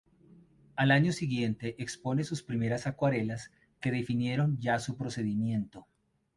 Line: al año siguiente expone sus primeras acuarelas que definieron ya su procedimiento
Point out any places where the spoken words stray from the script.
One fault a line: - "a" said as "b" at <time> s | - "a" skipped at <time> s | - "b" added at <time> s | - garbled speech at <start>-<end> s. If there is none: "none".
none